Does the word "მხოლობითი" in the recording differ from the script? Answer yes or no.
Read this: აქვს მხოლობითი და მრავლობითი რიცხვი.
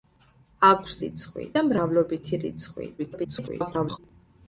yes